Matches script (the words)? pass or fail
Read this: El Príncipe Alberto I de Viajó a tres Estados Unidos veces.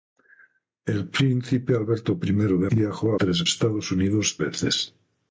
pass